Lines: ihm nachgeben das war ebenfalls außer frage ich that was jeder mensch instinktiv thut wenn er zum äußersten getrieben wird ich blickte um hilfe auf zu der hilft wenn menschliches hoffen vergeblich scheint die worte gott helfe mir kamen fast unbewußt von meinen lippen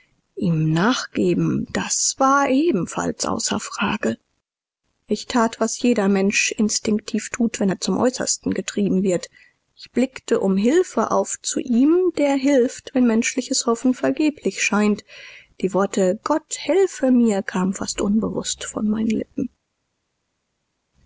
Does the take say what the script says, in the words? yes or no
no